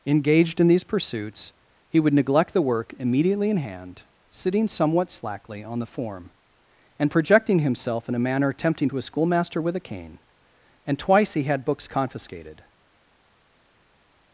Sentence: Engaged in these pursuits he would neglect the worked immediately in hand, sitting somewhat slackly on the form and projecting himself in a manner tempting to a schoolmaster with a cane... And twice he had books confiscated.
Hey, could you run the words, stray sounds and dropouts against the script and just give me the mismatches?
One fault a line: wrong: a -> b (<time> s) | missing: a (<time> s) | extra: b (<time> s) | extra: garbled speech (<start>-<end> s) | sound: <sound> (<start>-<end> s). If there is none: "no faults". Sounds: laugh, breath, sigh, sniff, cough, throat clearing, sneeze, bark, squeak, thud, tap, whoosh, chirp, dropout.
wrong: worked -> work (2.6 s)